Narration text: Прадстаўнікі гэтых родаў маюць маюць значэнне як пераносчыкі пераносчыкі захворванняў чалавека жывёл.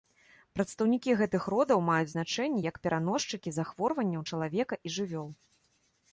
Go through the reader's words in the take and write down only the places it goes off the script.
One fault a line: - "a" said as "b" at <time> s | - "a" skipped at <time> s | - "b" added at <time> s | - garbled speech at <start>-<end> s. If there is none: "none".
- "маюць" skipped at 2.1 s
- "пераносчыкі" skipped at 3.6 s
- "і" added at 4.9 s